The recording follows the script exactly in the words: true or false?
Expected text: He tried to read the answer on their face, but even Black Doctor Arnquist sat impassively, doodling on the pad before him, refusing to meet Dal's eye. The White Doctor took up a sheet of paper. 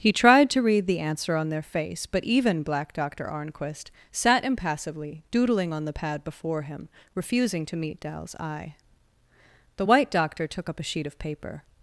true